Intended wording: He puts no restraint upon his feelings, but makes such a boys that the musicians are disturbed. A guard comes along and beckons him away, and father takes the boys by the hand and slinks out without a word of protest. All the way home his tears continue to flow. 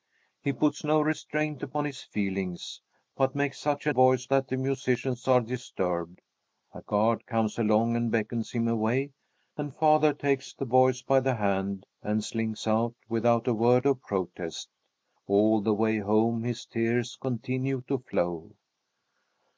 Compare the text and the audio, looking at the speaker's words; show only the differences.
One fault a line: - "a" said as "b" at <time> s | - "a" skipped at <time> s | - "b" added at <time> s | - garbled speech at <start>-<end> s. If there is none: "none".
none